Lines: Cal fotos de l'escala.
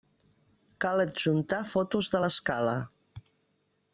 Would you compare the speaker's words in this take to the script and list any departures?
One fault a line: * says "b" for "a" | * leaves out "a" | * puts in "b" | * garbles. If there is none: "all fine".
* puts in "adjuntar"